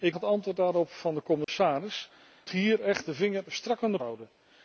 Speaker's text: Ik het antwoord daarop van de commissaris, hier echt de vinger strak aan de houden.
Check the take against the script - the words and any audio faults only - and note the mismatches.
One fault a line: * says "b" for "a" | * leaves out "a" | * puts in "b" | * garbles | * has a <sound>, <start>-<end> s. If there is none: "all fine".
* has a dropout, 1.4-1.5 s